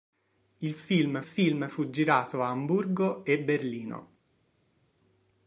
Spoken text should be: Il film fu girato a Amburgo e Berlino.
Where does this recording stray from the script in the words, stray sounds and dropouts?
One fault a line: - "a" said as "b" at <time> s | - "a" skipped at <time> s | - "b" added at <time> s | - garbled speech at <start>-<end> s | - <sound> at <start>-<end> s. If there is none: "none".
- "film" added at 1.2 s